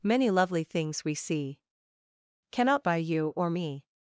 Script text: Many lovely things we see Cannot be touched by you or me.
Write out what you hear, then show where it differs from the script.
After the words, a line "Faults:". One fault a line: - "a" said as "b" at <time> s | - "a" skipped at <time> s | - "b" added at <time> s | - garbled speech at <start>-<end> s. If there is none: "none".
Many lovely things we see Cannot by you or me.
Faults:
- "be touched" skipped at 2.8 s